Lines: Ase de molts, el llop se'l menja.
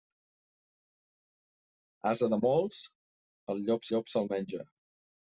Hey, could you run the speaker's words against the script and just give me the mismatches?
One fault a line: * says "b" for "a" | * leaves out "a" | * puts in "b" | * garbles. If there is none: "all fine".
* puts in "llop"